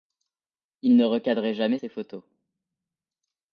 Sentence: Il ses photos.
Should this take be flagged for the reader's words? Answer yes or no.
yes